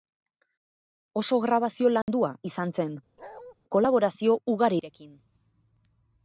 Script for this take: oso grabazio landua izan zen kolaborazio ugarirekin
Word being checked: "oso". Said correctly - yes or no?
yes